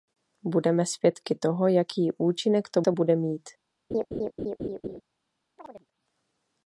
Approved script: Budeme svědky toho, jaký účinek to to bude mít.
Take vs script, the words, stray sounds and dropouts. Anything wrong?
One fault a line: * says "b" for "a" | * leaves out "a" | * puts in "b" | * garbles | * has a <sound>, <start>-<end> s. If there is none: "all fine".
* has a laugh, 3.9-5.0 s
* has a chirp, 5.6-5.9 s